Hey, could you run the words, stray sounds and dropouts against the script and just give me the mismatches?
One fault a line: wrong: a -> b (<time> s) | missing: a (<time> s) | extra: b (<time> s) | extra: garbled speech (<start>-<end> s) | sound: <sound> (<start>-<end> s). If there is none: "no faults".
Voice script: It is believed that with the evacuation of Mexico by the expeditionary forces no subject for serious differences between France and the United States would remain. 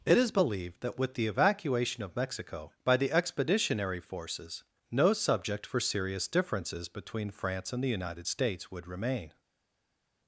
no faults